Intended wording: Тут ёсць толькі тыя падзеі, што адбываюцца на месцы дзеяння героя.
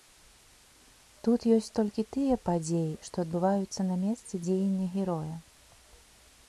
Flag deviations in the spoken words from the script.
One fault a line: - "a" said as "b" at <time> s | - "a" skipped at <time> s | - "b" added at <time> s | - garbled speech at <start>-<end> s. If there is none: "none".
none